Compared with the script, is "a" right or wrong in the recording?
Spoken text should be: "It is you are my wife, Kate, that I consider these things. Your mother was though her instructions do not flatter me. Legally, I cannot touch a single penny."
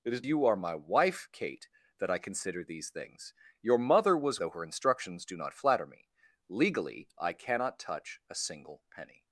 right